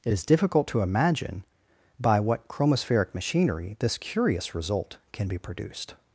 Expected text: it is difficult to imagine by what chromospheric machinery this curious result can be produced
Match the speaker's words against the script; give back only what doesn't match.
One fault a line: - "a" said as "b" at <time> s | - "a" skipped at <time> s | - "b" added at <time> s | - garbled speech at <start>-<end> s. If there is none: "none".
none